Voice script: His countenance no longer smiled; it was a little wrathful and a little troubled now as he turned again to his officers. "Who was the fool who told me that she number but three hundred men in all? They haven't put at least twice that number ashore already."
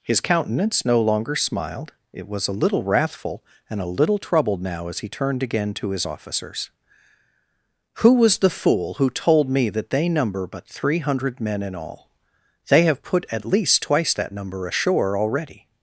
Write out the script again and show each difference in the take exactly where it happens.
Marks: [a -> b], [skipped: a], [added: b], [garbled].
His countenance no longer smiled; it was a little wrathful and a little troubled now as he turned again to his officers. "Who was the fool who told me that [she -> they] number but three hundred men in all? They [haven't -> have] put at least twice that number ashore already."